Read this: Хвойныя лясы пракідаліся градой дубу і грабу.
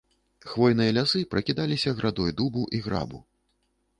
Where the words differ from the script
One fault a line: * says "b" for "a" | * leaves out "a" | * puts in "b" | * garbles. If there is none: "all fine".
all fine